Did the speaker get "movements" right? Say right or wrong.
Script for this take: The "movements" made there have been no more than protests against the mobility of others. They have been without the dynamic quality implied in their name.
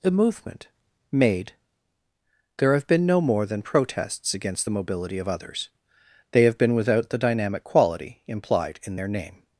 wrong